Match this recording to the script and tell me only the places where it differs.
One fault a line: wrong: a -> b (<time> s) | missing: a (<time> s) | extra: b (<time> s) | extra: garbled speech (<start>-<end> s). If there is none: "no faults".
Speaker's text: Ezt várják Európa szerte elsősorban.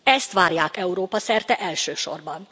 no faults